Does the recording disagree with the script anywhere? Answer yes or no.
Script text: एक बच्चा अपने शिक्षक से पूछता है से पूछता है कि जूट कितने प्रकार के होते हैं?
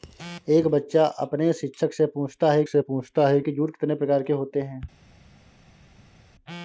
no